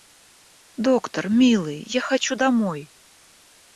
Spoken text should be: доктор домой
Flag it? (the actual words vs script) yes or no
yes